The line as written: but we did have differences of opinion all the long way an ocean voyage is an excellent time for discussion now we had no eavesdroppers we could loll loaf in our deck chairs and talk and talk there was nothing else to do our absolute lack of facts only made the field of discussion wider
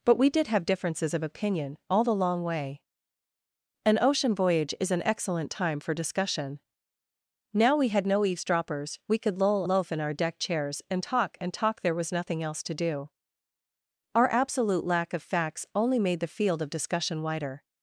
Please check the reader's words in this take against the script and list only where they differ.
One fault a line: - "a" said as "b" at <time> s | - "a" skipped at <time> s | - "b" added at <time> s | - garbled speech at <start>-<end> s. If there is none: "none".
none